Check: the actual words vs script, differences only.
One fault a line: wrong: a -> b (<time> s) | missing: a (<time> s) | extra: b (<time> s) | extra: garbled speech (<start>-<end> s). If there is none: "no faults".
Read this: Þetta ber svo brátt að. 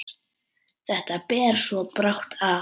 no faults